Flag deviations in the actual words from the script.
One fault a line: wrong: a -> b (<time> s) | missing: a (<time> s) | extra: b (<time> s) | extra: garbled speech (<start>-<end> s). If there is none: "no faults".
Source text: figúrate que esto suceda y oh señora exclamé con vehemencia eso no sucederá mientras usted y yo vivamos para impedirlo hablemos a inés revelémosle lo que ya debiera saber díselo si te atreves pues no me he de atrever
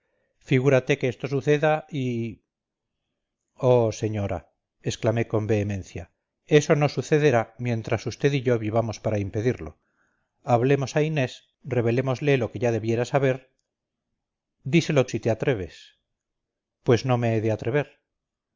no faults